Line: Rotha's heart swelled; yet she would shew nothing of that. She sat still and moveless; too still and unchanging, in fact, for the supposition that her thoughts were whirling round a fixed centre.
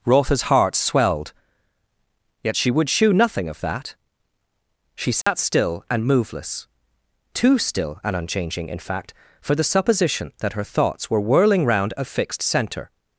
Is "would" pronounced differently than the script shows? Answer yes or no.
no